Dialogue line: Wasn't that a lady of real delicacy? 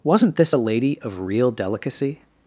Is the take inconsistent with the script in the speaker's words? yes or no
yes